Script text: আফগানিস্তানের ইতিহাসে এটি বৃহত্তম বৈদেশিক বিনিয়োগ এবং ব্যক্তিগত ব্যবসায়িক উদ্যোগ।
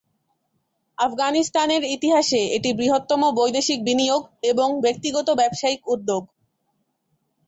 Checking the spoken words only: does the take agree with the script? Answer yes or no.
yes